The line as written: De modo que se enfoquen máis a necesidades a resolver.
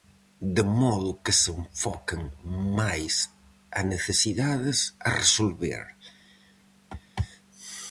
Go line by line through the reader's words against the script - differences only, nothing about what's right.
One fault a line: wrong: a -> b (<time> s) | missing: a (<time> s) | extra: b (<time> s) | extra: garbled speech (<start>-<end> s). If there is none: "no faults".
no faults